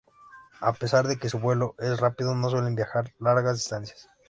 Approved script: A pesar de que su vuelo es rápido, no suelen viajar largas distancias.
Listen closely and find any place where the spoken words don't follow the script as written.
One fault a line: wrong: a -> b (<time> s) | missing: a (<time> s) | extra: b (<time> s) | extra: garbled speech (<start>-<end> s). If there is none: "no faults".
no faults